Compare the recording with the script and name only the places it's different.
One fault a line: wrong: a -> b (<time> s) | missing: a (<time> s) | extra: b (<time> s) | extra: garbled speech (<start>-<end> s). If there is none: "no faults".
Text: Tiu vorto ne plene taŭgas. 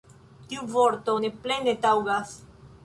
no faults